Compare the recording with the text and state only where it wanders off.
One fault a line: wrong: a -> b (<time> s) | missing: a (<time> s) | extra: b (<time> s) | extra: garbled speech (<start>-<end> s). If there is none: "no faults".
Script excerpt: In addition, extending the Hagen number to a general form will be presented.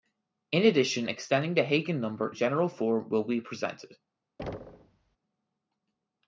missing: to (2.3 s)